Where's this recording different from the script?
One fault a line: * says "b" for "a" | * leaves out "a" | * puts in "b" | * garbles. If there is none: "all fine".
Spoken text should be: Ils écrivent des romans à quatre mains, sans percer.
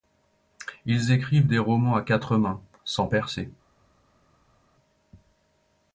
all fine